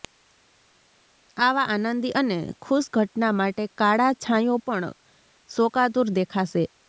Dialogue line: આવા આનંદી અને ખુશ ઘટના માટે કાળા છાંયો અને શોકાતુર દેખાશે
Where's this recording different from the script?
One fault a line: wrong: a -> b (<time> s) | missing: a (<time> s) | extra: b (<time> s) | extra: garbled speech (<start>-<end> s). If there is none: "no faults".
wrong: અને -> પણ (4.7 s)